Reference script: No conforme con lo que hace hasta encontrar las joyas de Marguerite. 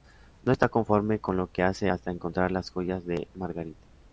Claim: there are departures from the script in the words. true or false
true